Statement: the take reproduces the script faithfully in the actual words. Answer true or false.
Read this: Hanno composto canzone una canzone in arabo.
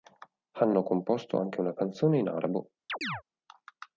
false